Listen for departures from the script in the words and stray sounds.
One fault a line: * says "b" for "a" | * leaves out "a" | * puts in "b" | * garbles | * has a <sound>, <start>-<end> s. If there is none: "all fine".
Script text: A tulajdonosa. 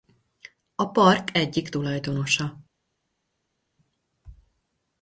* puts in "park egyik"